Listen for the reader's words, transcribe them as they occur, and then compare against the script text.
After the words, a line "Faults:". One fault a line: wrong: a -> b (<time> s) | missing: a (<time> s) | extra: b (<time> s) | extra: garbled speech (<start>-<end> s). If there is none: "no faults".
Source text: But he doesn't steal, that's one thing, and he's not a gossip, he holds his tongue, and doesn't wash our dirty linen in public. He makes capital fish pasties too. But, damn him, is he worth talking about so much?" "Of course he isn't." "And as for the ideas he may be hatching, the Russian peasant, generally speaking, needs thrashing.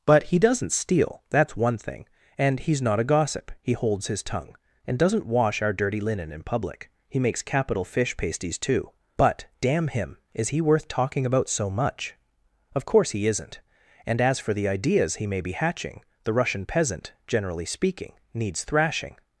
But he doesn't steal, that's one thing, and he's not a gossip, he holds his tongue, and doesn't wash our dirty linen in public. He makes capital fish pasties too. But, damn him, is he worth talking about so much?" "Of course he isn't." "And as for the ideas he may be hatching, the Russian peasant, generally speaking, needs thrashing.
Faults:
no faults